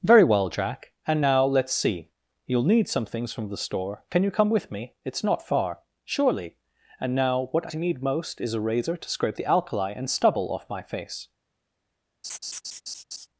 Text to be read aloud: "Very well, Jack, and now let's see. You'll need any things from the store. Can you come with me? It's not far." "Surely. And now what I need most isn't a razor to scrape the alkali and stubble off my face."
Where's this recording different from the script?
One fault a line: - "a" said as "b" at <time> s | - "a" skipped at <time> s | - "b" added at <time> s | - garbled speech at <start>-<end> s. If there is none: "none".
- "any" said as "some" at 2.9 s
- "isn't" said as "is" at 8.4 s